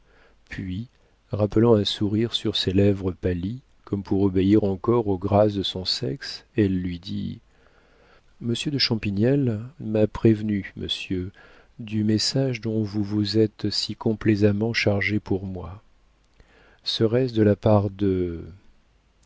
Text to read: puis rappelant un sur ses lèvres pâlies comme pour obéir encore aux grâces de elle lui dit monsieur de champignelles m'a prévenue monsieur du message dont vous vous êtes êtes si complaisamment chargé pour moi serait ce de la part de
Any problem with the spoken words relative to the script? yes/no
yes